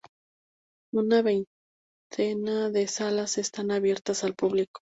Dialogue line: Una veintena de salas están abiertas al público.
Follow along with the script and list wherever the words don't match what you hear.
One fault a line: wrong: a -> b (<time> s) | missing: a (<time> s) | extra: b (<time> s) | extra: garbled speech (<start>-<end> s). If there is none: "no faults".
no faults